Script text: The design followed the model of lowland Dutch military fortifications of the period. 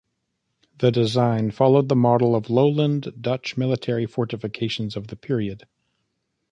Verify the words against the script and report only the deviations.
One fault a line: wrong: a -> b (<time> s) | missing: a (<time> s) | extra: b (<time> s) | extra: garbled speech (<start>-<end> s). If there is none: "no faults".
no faults